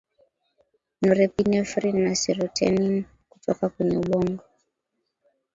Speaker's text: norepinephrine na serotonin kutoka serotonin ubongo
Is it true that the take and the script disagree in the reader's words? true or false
true